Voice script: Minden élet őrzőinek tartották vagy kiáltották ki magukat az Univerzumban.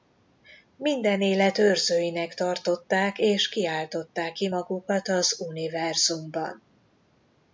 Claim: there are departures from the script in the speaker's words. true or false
true